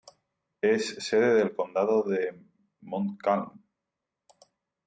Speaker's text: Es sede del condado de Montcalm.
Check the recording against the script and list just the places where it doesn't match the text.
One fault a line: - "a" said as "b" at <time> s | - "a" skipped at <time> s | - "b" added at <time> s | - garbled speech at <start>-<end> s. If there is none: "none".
none